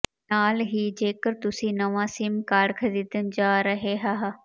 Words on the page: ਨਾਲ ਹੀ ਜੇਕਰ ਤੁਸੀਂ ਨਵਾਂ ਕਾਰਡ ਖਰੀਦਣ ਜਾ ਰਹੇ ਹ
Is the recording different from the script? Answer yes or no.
yes